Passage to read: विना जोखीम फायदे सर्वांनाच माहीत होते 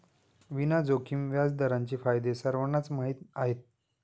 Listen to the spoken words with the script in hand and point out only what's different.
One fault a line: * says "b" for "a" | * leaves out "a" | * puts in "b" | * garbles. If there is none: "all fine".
* puts in "व्याजदरांचे"
* says "आहेत" for "होते"